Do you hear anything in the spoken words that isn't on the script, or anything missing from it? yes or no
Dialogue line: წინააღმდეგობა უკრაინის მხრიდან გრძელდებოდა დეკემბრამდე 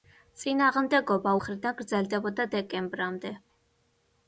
yes